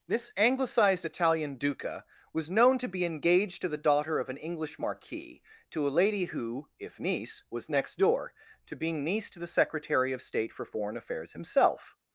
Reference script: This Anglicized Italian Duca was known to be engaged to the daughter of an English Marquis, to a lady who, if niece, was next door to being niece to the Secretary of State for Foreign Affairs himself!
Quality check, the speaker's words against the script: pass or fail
pass